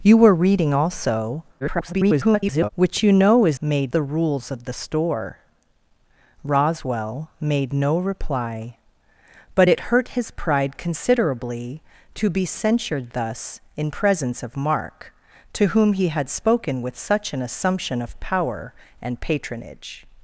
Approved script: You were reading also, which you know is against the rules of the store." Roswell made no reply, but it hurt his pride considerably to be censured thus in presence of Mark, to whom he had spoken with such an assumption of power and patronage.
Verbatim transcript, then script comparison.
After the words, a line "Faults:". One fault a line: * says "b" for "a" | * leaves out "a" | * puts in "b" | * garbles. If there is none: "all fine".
You were reading also, [garbled] which you know is made the rules of the store." Roswell made no reply, but it hurt his pride considerably to be censured thus in presence of Mark, to whom he had spoken with such an assumption of power and patronage.
Faults:
* garbles
* says "made" for "against"